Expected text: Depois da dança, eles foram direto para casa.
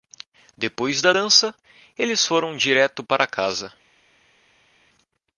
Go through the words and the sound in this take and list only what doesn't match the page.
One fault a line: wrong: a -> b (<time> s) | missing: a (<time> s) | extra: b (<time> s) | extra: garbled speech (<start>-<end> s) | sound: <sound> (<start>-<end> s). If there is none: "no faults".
no faults